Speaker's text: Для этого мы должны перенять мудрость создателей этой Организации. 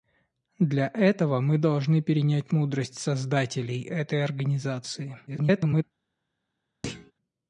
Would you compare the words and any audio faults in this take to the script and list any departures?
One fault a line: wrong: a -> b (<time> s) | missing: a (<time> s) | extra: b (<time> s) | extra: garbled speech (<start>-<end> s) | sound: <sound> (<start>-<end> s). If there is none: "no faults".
extra: garbled speech (5.3-5.8 s)
sound: thud (6.8-7.1 s)